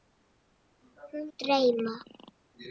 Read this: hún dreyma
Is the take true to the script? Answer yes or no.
yes